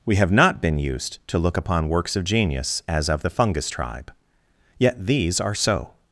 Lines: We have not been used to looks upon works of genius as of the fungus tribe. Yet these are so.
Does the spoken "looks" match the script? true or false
false